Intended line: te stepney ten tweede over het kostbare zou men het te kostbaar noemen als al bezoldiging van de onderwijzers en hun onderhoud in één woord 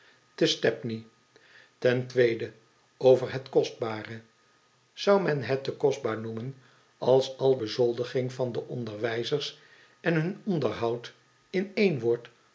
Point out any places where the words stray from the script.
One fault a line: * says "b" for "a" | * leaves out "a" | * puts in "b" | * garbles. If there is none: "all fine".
all fine